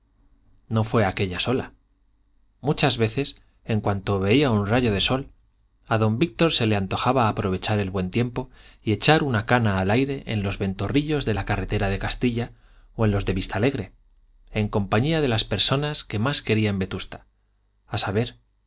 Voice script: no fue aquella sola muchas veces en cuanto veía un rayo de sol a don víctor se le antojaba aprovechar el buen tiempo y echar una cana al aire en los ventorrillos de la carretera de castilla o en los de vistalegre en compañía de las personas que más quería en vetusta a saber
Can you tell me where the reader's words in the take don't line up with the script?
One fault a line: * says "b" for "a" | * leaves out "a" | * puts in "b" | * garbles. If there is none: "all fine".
all fine